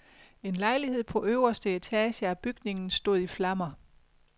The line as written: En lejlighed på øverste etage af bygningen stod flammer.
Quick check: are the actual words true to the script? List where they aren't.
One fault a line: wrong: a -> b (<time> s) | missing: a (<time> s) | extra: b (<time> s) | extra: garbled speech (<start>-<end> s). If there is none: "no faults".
extra: i (3.2 s)